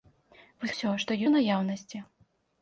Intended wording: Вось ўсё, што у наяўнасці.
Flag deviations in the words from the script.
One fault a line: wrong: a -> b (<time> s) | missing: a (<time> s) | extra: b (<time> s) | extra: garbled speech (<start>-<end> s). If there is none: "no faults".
no faults